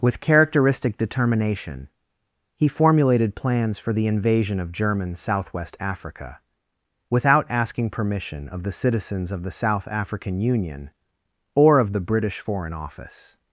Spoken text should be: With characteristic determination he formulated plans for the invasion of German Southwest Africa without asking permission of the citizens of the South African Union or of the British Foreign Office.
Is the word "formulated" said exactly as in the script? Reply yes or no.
yes